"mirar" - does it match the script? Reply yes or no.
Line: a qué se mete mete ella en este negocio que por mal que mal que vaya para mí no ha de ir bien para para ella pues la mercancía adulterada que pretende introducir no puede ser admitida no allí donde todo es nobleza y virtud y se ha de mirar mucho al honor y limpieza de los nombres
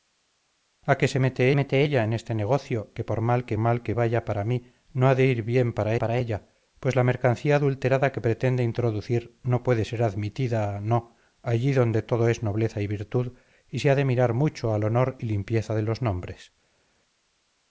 yes